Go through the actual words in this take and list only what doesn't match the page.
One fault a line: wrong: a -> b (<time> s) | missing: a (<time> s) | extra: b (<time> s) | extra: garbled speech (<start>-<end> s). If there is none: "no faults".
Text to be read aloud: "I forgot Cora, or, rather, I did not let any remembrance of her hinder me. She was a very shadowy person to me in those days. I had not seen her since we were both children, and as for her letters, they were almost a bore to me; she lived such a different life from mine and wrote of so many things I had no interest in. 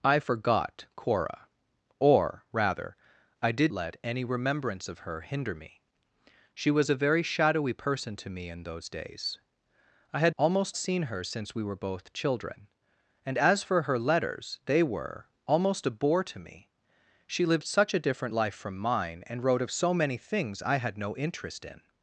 missing: not (3.7 s)
wrong: not -> almost (10.4 s)